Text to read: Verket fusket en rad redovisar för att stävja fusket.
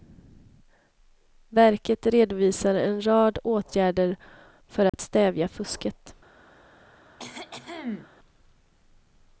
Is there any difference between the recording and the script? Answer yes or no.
yes